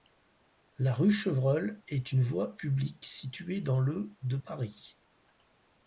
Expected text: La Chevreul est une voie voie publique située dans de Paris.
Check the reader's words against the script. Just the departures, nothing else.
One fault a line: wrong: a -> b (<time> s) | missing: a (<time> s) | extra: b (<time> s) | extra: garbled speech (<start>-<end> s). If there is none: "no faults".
extra: rue (0.9 s)
missing: voie (2.6 s)
extra: le (3.8 s)